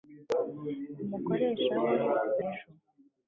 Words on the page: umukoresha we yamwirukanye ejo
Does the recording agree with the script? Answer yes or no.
no